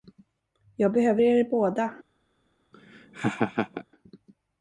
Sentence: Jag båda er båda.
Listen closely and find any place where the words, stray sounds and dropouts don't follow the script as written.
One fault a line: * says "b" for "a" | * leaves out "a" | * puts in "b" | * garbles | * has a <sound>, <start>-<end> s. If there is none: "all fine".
* says "behöver" for "båda"
* has a laugh, 2.7-3.8 s